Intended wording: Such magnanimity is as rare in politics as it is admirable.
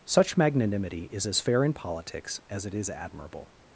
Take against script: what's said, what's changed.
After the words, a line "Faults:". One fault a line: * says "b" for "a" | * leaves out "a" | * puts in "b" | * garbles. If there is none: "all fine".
Such magnanimity is as fair in politics as it is admirable.
Faults:
* says "fair" for "rare"